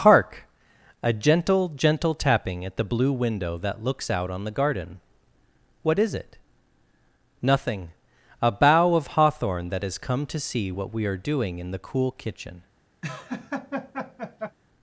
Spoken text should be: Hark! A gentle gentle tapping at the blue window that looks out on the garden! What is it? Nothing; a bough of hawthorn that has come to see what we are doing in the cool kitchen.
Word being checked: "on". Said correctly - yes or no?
yes